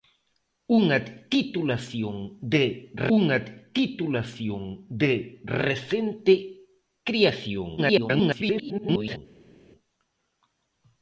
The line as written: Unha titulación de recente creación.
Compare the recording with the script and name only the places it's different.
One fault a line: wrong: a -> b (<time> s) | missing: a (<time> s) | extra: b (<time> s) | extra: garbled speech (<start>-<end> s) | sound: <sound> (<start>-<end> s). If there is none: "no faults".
extra: unha titulación de (3.2 s)
extra: garbled speech (7.8-9.2 s)